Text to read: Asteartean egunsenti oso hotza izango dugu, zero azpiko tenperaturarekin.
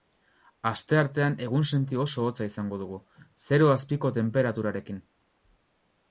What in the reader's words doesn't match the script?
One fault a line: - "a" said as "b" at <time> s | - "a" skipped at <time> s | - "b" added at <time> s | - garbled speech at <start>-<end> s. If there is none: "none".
none